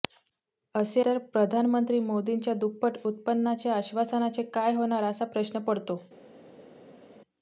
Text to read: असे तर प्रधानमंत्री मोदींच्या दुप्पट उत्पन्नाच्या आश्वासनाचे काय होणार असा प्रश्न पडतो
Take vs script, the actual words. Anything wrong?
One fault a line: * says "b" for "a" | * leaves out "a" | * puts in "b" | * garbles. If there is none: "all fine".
all fine